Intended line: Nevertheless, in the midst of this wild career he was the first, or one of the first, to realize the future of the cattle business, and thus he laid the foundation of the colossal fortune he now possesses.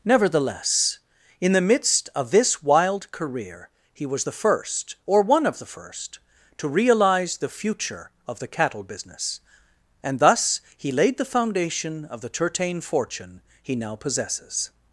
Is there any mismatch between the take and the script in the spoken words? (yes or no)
yes